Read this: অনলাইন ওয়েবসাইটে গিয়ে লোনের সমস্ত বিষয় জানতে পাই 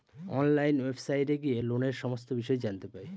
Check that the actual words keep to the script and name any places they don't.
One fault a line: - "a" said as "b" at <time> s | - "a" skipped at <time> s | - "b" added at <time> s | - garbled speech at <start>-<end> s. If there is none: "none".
none